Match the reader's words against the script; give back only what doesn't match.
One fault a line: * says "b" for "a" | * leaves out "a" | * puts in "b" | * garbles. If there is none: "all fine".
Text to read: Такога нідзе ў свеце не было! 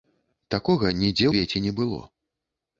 * leaves out "ў"